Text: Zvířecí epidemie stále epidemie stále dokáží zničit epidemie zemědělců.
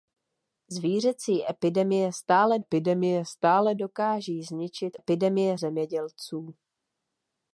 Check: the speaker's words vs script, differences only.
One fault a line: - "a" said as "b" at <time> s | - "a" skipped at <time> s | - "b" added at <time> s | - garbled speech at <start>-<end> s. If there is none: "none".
none